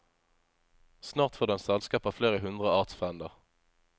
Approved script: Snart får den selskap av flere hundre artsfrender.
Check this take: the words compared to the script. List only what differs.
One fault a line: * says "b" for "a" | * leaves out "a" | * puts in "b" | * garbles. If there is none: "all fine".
all fine